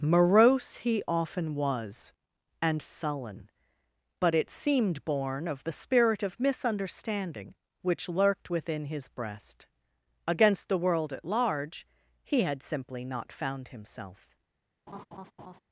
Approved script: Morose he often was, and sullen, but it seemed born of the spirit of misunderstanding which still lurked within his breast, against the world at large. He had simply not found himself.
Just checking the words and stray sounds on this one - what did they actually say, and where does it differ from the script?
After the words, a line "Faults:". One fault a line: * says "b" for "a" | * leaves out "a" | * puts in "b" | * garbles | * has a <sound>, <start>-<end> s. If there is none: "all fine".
Morose he often was, and sullen, but it seemed born of the spirit of misunderstanding which lurked within his breast, against the world at large. He had simply not found himself.
Faults:
* leaves out "still"
* has a laugh, 14.9-15.6 s